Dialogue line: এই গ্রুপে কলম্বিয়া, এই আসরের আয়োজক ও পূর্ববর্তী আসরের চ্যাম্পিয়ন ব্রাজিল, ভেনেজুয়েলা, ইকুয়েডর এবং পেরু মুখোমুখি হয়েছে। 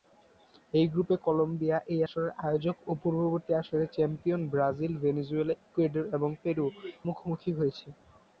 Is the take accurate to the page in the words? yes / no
yes